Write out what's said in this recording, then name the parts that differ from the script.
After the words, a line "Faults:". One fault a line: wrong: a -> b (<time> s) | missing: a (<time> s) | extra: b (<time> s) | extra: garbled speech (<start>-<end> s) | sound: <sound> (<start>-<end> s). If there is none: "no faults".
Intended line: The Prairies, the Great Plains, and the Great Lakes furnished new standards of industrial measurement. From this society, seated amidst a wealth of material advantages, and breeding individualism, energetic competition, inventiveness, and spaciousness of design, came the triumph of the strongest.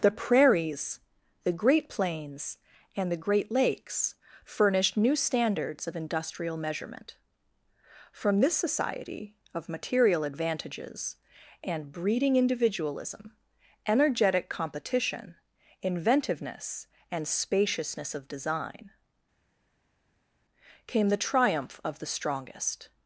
The Prairies, the Great Plains, and the Great Lakes furnished new standards of industrial measurement. From this society, of material advantages, and breeding individualism, energetic competition, inventiveness, and spaciousness of design, came the triumph of the strongest.
Faults:
missing: seated amidst a wealth (9.3 s)